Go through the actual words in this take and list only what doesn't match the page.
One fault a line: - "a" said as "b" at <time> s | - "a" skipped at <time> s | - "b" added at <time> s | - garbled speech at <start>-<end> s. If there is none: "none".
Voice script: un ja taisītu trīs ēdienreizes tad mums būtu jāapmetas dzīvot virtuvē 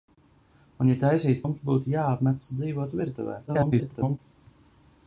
- "trīs ēdienreizes tad" skipped at 1.4 s
- garbled speech at 3.5-4.2 s